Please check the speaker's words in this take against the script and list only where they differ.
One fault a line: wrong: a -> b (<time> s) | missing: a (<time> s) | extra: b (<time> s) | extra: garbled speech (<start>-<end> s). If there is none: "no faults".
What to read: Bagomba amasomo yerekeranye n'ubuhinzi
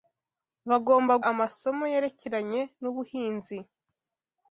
no faults